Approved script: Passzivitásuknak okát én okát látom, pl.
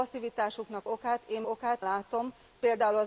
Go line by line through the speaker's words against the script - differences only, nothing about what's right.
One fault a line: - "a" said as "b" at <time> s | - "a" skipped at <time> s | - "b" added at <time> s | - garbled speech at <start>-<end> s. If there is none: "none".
none